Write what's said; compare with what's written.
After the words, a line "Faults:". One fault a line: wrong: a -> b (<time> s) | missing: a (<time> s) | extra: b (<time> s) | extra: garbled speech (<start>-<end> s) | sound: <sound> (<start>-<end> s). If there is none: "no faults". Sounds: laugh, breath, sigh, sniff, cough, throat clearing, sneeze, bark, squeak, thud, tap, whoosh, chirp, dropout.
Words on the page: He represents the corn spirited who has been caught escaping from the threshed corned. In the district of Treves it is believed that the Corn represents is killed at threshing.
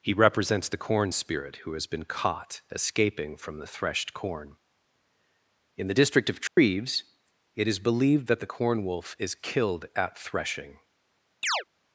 He represents the corn spirit who has been caught escaping from the threshed corn. In the district of Treves it is believed that the Corn wolf is killed at threshing.
Faults:
wrong: spirited -> spirit (1.1 s)
wrong: corned -> corn (4.1 s)
sound: dropout (6.5-6.6 s)
wrong: represents -> wolf (8.8 s)
sound: chirp (11.4-11.6 s)